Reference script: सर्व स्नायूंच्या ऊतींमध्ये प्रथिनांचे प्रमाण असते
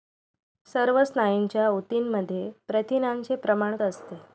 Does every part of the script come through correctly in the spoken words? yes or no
yes